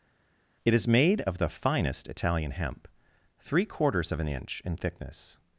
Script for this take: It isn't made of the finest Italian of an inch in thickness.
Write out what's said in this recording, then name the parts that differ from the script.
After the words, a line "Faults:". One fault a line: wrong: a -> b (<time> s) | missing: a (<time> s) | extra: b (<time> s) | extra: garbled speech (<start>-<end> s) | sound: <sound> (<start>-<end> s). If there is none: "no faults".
It is made of the finest Italian hemp, three quarters of an inch in thickness.
Faults:
wrong: isn't -> is (0.7 s)
extra: hemp three quarters (2.5 s)